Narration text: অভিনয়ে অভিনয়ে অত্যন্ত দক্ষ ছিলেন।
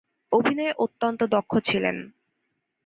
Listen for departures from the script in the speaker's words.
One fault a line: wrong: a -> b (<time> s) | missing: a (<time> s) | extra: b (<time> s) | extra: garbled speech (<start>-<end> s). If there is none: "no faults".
missing: অভিনয়ে (0.7 s)